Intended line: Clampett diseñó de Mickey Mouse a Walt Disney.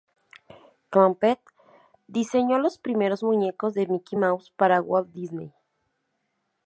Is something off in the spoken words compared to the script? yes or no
yes